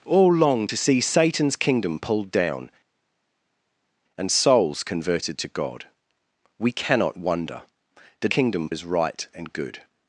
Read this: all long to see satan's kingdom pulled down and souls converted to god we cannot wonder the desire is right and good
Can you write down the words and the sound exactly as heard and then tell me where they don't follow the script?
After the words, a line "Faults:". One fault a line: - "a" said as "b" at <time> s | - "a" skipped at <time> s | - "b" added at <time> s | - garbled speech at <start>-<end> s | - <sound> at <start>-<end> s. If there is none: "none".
all long to see satan's kingdom pulled down and souls converted to god we cannot wonder the kingdom is right and good
Faults:
- "desire" said as "kingdom" at 8.3 s